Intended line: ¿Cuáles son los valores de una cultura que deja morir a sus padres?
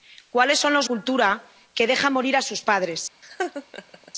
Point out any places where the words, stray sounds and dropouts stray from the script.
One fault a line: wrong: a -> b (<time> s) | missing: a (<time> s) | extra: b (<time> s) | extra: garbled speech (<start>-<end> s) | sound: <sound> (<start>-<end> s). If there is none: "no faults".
missing: valores de una (0.9 s)
sound: laugh (3.2-4.1 s)